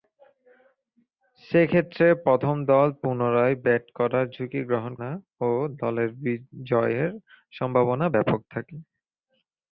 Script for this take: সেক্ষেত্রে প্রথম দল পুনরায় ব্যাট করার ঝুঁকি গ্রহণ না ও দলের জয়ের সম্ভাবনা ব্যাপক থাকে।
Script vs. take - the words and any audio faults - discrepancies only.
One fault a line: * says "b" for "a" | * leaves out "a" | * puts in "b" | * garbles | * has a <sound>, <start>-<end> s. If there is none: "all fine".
all fine